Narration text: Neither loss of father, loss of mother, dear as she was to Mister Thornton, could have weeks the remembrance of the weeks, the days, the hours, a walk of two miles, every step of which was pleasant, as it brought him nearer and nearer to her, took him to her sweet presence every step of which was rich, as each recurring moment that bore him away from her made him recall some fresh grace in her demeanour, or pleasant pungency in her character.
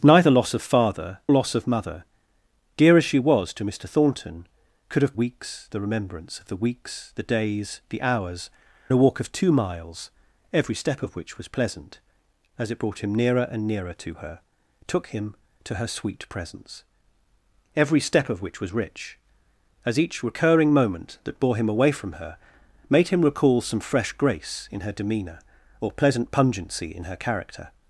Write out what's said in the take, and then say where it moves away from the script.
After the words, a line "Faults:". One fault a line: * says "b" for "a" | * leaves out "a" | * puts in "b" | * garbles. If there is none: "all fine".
Neither loss of father, loss of mother, dear as she was to Mister Thornton, could have weeks the remembrance of the weeks, the days, the hours, a walk of two miles, every step of which was pleasant, as it brought him nearer and nearer to her, took him to her sweet presence every step of which was rich, as each recurring moment that bore him away from her made him recall some fresh grace in her demeanour, or pleasant pungency in her character.
Faults:
all fine